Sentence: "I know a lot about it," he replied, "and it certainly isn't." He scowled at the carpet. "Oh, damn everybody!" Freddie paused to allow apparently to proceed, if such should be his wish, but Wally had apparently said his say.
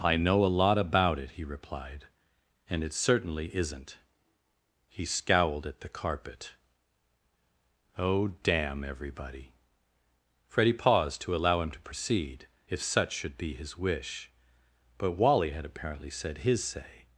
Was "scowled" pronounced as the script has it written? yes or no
yes